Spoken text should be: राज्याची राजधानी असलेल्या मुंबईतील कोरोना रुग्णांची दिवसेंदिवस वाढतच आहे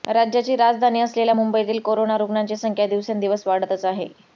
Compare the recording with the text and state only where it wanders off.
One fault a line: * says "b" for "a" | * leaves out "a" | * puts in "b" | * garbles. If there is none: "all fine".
* puts in "संख्या"